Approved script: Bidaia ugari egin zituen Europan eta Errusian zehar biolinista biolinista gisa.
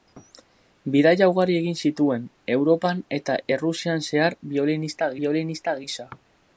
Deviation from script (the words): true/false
false